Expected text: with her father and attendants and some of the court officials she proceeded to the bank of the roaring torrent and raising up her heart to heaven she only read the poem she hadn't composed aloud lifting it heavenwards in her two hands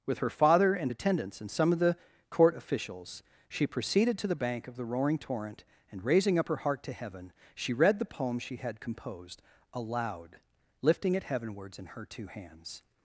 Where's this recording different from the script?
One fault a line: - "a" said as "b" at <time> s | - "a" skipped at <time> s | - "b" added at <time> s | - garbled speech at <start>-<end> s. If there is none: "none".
- "only" skipped at 7.7 s
- "hadn't" said as "had" at 8.6 s